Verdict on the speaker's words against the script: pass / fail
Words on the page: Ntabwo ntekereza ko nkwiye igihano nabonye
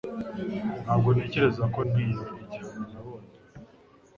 pass